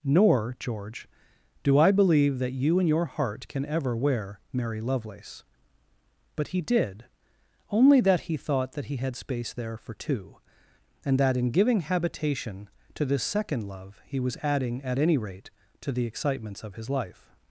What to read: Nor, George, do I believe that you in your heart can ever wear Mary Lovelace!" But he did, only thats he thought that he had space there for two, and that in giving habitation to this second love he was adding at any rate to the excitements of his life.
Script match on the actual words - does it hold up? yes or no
no